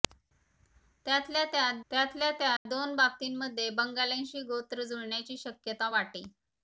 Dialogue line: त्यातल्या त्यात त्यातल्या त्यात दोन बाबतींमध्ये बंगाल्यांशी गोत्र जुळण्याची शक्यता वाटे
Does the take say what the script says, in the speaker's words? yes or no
yes